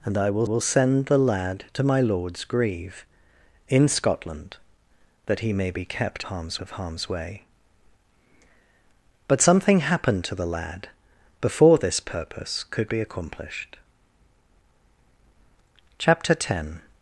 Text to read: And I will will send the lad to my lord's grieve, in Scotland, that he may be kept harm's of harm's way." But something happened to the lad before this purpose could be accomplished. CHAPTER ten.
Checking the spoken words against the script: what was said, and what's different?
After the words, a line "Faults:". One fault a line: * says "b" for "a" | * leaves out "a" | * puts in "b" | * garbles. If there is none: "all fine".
And I will will send the lad to my lord's grieve, in Scotland, that he may be kept harm's of harm's way." But something happened to the lad before this purpose could be accomplished. CHAPTER ten.
Faults:
all fine